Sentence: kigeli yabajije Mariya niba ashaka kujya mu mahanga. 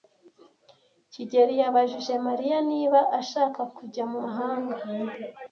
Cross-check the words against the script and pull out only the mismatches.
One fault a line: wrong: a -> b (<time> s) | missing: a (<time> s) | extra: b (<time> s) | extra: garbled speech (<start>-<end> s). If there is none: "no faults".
no faults